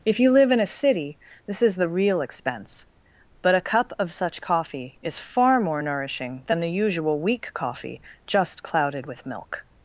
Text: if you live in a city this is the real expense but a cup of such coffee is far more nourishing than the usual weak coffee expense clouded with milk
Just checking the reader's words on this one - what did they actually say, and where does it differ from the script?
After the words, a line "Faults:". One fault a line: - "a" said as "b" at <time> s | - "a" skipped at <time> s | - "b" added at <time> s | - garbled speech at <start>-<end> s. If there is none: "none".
if you live in a city this is the real expense but a cup of such coffee is far more nourishing than the usual weak coffee just clouded with milk
Faults:
- "expense" said as "just" at 8.3 s